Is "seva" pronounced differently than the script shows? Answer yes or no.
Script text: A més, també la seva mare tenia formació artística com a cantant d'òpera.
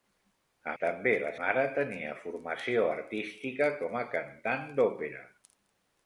yes